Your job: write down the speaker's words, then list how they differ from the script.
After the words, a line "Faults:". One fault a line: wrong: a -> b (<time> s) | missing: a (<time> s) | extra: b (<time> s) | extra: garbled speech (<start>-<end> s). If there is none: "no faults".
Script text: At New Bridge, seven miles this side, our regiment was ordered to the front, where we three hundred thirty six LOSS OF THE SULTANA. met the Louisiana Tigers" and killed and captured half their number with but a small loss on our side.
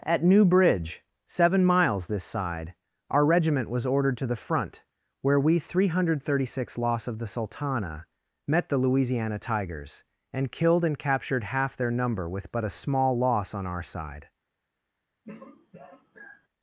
At New Bridge, seven miles this side, our regiment was ordered to the front, where we three hundred thirty six LOSS OF THE SULTANA. met the Louisiana Tigers" and killed and captured half their number with but a small loss on our side.
Faults:
no faults